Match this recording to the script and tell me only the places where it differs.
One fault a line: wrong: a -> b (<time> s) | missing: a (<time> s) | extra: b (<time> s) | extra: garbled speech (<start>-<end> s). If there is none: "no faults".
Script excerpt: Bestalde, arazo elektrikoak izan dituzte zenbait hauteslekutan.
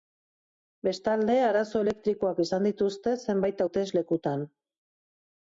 no faults